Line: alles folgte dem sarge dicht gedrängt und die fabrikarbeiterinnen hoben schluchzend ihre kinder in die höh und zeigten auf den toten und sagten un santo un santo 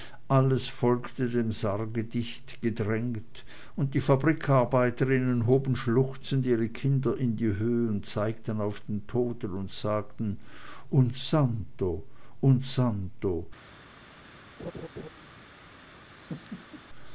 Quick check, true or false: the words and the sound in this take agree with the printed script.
false